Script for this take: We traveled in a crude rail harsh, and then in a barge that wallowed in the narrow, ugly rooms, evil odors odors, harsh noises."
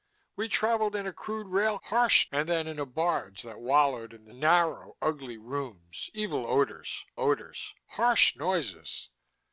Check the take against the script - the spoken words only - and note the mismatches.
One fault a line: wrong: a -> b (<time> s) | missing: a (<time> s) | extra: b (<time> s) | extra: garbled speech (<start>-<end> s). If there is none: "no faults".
no faults